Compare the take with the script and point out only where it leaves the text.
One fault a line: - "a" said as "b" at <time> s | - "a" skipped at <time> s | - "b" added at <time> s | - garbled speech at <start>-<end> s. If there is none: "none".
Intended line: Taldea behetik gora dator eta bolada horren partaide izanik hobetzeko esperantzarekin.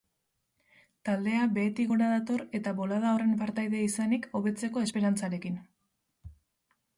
none